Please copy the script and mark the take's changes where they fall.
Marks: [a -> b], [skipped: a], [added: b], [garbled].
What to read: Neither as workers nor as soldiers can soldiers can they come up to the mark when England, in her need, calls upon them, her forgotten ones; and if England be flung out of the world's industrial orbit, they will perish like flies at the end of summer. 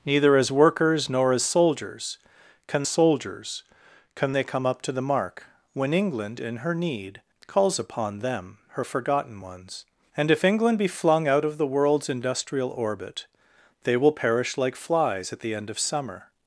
Neither as workers nor as soldiers can soldiers can they come up to the mark when England, in her need, calls upon them, her forgotten ones; and if England be flung out of the world's industrial orbit, they will perish like flies at the end of summer.